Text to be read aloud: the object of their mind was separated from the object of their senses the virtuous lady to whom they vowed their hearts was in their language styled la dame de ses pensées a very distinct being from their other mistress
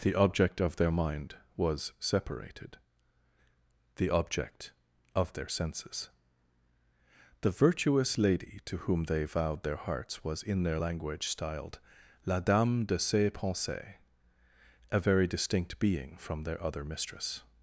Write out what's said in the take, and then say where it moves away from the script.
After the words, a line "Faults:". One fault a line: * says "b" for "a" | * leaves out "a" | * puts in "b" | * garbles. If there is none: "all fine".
the object of their mind was separated the object of their senses the virtuous lady to whom they vowed their hearts was in their language styled la dame de ses pensées a very distinct being from their other mistress
Faults:
* leaves out "from"